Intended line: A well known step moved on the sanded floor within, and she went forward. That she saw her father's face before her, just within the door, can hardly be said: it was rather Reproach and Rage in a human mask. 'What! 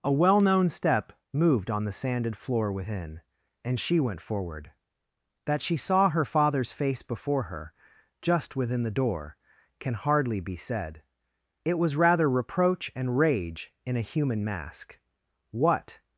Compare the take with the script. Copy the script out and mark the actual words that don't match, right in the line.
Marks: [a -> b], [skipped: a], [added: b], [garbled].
A well known step moved on the sanded floor within, and she went forward. That she saw her father's face before her, just within the door, can hardly be said: it was rather Reproach and Rage in a human mask. 'What!